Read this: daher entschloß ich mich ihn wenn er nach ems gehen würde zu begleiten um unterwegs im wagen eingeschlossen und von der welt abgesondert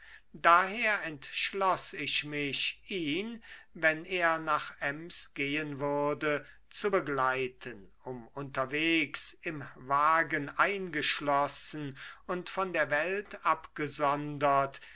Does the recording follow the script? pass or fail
pass